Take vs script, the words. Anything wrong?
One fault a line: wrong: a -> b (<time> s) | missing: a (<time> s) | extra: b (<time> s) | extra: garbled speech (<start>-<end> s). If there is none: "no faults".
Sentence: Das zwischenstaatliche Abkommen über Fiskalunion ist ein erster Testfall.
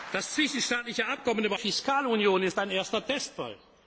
no faults